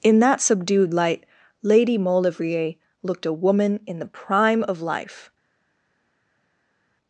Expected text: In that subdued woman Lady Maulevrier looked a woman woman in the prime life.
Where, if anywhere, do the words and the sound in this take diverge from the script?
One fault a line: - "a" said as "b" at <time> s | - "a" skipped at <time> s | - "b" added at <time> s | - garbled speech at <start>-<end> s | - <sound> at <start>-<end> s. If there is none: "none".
- "woman" said as "light" at 0.9 s
- "woman" skipped at 3.8 s
- "of" added at 4.6 s